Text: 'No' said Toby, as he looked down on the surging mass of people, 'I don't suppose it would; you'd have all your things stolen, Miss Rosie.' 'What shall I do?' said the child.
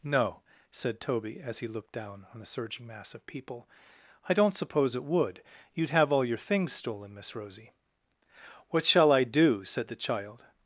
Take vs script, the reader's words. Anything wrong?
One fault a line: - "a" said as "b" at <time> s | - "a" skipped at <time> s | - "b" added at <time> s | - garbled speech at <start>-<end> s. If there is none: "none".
none